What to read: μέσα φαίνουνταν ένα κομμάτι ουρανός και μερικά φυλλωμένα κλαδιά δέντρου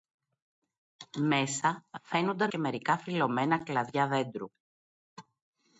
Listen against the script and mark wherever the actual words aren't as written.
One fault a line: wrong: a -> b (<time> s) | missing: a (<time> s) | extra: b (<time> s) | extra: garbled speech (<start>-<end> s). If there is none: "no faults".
missing: ένα κομμάτι ουρανός (2.5 s)